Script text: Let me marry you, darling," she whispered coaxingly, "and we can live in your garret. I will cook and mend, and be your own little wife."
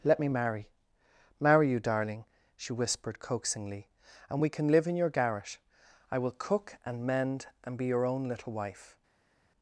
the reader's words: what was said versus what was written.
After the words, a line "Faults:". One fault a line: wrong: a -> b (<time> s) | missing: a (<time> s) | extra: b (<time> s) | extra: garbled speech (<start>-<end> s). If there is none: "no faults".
Let me marry marry you, darling," she whispered coaxingly, "and we can live in your garret. I will cook and mend, and be your own little wife."
Faults:
extra: marry (1.4 s)